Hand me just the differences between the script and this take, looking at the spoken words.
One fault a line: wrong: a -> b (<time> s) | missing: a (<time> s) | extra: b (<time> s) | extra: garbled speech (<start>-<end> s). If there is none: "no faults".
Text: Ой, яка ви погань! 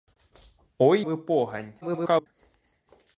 missing: яка (1.0 s)
extra: garbled speech (1.8-2.3 s)